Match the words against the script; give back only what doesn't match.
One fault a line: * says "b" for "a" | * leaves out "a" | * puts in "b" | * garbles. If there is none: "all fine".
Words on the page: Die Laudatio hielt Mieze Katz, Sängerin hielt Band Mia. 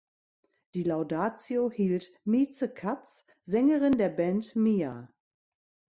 * says "der" for "hielt"